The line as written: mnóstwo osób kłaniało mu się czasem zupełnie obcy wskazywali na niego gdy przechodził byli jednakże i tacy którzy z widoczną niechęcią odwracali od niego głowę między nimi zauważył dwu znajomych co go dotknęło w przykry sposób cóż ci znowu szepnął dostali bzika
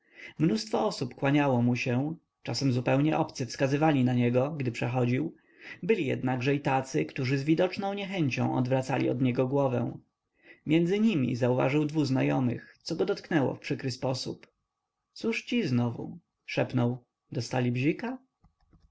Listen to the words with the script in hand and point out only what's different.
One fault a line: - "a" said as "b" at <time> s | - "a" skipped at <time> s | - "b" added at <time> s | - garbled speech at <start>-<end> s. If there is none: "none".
none